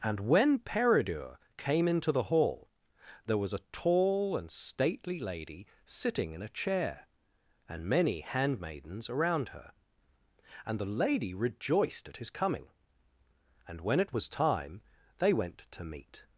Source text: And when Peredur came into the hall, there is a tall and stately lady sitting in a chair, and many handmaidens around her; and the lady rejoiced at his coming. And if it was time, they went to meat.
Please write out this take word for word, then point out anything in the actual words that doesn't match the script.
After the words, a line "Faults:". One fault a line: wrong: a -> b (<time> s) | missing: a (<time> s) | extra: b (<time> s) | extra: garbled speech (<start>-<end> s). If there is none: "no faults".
And when Peredur came into the hall, there was a tall and stately lady sitting in a chair, and many handmaidens around her; and the lady rejoiced at his coming. And when it was time, they went to meat.
Faults:
wrong: is -> was (3.4 s)
wrong: if -> when (13.8 s)